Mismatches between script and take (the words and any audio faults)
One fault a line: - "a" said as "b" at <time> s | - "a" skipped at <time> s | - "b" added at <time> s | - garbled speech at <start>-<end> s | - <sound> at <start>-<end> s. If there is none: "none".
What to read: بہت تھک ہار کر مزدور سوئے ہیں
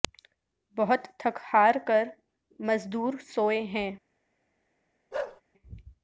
- bark at 5.1-5.4 s